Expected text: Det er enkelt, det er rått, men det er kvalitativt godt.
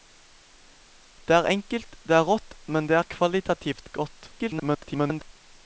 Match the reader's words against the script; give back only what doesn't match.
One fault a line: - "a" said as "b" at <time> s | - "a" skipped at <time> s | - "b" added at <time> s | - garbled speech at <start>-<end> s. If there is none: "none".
- garbled speech at 4.4-5.3 s